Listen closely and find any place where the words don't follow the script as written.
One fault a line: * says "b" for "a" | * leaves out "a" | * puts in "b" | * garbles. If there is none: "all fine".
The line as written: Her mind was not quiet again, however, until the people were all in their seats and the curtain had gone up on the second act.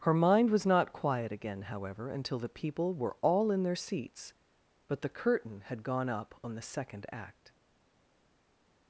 * says "but" for "and"